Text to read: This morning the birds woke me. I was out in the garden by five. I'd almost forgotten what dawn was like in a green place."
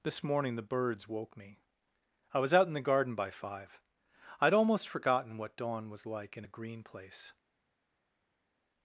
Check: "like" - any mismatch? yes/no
no